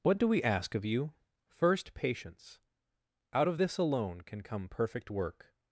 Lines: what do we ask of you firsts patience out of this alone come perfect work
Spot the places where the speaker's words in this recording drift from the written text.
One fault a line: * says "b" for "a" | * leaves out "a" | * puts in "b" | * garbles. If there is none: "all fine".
* says "first" for "firsts"
* puts in "can"